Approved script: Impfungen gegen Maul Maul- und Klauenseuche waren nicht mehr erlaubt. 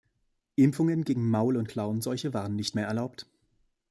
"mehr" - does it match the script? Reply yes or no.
yes